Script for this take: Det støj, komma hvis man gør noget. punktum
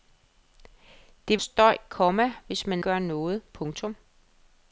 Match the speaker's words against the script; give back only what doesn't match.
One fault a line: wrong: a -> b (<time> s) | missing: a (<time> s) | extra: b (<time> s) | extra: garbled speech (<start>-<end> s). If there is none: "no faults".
no faults